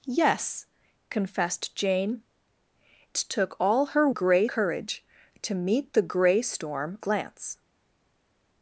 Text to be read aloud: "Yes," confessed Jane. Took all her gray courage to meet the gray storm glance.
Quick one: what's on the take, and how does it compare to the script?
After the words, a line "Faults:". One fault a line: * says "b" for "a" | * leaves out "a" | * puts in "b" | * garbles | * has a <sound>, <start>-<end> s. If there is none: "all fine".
"Yes," confessed Jane. Took all her gray courage to meet the gray storm glance.
Faults:
all fine